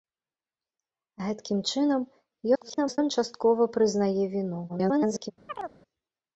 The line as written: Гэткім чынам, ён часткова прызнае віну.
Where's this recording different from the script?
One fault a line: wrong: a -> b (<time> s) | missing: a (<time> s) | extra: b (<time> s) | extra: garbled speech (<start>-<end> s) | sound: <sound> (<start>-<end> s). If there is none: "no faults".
extra: garbled speech (2.5-3.0 s)
extra: garbled speech (4.7-5.3 s)
sound: chirp (5.5-5.8 s)